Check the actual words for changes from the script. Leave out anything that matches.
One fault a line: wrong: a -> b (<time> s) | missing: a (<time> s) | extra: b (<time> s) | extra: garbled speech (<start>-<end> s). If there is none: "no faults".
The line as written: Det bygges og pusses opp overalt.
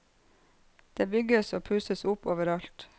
no faults